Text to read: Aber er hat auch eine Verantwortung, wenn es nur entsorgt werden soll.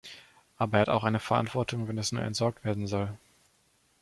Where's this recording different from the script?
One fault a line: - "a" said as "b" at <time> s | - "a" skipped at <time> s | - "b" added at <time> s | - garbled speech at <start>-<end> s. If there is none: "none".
none